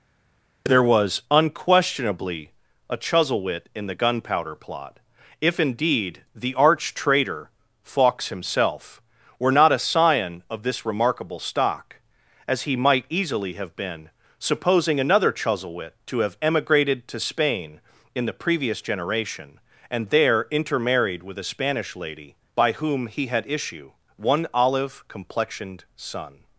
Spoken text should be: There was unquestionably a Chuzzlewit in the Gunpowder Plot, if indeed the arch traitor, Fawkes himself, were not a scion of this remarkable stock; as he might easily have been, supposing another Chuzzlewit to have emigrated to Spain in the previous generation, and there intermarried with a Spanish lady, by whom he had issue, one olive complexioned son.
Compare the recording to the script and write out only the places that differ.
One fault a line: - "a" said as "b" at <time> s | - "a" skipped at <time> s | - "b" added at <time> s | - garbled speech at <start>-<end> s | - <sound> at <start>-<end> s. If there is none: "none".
none